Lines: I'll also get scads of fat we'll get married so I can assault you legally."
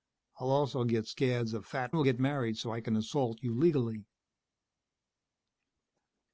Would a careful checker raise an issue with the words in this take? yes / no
no